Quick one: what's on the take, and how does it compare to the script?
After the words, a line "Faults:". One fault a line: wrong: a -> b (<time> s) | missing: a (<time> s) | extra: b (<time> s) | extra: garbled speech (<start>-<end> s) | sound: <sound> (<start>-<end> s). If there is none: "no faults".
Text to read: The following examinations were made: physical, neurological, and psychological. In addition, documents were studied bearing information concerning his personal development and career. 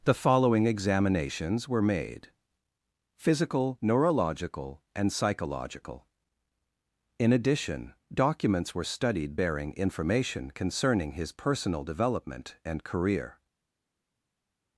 The following examinations were made: physical, neurological, and psychological. In addition, documents were studied bearing information concerning his personal development and career.
Faults:
no faults